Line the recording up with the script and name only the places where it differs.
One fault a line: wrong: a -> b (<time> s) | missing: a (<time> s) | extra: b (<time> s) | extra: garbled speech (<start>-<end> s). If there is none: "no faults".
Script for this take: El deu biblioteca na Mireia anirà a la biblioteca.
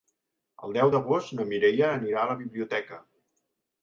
wrong: biblioteca -> d'agost (0.9 s)